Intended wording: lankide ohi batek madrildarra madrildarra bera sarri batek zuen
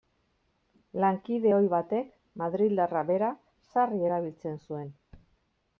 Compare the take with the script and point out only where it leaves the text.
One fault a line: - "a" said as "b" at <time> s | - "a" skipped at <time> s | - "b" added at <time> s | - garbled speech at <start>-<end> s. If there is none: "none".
- "madrildarra" skipped at 3.0 s
- "batek" said as "erabiltzen" at 4.1 s